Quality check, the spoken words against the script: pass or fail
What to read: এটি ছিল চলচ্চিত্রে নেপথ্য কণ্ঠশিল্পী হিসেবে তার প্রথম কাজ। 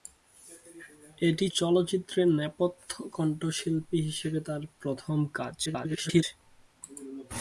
fail